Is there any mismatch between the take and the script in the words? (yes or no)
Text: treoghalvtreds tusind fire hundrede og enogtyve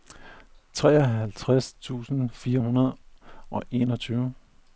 no